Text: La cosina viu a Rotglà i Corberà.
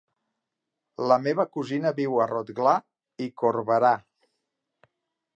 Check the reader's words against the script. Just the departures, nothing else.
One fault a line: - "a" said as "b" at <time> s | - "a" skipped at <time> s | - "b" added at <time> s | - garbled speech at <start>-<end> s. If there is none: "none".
- "meva" added at 1.2 s